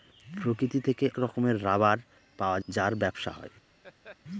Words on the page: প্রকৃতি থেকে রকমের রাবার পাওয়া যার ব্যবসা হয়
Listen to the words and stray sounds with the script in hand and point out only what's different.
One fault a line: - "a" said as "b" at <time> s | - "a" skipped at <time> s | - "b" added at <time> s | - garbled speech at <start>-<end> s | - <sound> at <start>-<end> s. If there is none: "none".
- laugh at 3.8-4.2 s